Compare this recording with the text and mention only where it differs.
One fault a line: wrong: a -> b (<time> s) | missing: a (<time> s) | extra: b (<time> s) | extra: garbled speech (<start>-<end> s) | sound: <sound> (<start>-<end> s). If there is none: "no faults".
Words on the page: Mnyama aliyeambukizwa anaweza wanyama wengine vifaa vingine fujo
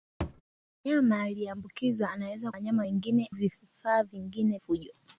sound: thud (0.2-0.4 s)